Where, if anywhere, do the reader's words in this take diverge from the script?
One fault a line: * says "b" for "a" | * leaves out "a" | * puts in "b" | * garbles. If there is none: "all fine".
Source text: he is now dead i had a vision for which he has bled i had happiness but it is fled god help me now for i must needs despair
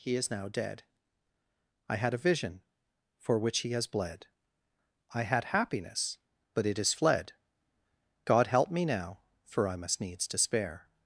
all fine